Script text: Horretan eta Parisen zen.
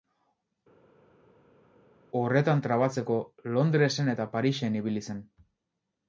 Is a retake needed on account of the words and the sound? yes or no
yes